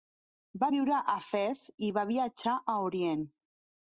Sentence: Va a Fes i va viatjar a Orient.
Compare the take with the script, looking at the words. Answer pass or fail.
fail